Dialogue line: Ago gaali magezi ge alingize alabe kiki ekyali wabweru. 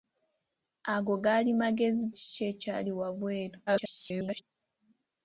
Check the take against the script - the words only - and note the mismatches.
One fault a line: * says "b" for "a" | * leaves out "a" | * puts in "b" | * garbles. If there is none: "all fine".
* leaves out "ge alingize alabe"
* garbles